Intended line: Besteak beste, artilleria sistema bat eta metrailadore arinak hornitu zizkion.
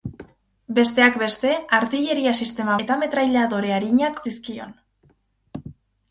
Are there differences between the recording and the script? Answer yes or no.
yes